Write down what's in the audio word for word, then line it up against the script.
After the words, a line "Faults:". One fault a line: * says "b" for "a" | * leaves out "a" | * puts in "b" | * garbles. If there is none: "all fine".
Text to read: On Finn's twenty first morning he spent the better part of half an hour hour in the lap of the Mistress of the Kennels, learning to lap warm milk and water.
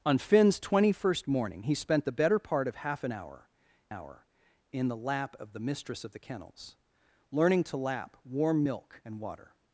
On Finn's twenty first morning he spent the better part of half an hour hour in the lap of the Mistress of the Kennels, learning to lap warm milk and water.
Faults:
all fine